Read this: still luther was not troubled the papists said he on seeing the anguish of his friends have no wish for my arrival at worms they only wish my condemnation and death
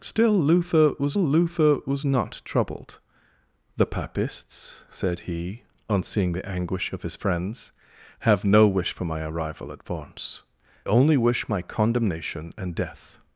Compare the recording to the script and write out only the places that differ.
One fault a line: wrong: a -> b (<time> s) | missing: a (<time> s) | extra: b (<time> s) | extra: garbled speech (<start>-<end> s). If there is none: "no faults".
extra: luther was (1.2 s)
missing: they (10.4 s)